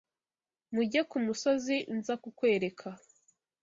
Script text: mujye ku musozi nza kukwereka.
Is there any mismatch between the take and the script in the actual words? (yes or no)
no